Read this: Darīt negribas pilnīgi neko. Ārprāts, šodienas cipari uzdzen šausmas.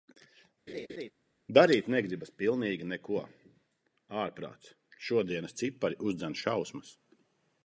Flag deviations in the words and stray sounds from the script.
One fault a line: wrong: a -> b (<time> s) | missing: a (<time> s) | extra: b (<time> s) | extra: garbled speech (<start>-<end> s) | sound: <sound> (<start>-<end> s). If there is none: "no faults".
sound: laugh (0.7-1.1 s)